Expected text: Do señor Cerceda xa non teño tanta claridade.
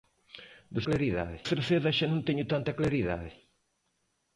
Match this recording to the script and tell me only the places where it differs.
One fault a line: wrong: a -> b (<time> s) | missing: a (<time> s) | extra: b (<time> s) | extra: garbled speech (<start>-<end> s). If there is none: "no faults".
wrong: señor -> claridade (0.9 s)